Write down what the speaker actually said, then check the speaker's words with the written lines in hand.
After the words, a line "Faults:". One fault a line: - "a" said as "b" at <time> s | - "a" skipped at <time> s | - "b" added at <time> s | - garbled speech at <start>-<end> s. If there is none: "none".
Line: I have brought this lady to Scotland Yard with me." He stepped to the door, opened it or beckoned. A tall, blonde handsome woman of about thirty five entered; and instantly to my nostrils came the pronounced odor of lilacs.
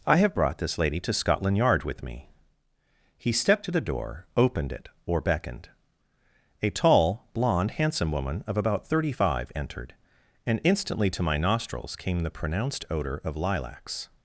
I have brought this lady to Scotland Yard with me." He stepped to the door, opened it or beckoned. A tall, blonde handsome woman of about thirty five entered; and instantly to my nostrils came the pronounced odor of lilacs.
Faults:
none